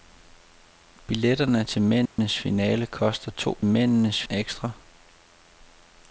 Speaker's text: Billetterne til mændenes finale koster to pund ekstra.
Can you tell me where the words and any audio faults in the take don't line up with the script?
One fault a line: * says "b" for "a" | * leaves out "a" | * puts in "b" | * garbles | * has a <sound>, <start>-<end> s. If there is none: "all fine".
* has a dropout, 2.1-2.2 s
* says "mændenes" for "pund"